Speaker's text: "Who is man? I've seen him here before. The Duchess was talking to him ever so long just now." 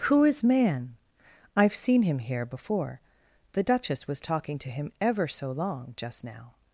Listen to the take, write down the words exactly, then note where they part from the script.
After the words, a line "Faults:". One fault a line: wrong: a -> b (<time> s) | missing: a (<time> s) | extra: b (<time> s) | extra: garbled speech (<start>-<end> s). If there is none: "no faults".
"Who is man? I've seen him here before. The Duchess was talking to him ever so long just now."
Faults:
no faults